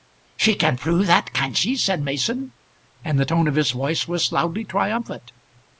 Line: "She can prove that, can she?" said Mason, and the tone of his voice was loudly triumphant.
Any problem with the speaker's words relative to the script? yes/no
no